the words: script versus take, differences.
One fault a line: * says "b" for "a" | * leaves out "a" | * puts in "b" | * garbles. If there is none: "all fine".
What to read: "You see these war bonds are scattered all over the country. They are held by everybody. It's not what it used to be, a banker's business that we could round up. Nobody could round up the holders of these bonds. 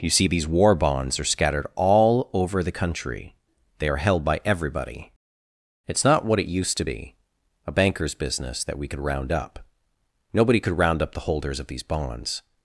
all fine